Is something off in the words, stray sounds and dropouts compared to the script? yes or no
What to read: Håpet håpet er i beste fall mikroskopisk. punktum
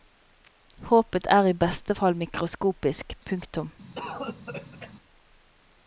yes